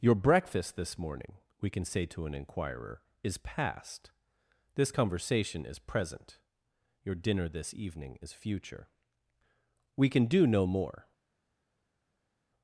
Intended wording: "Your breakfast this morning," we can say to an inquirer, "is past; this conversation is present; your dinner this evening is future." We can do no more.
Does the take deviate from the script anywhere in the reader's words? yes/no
no